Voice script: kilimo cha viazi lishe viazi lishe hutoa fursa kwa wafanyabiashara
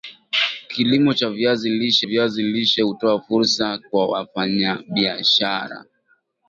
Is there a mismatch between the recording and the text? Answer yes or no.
no